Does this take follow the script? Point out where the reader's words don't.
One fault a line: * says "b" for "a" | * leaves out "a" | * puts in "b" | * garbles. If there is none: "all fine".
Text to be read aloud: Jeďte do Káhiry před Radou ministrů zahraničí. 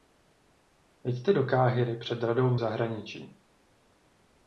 * leaves out "ministrů"